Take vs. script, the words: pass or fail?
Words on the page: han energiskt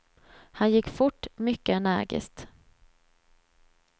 fail